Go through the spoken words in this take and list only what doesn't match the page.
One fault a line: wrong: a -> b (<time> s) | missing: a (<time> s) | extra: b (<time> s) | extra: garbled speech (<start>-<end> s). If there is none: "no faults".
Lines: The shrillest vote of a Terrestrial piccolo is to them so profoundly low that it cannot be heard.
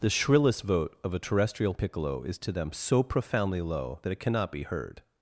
no faults